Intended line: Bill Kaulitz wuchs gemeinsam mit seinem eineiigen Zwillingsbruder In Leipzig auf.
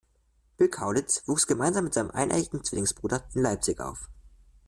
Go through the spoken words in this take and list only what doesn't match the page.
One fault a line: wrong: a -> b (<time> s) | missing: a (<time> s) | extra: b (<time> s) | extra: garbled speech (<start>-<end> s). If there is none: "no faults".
no faults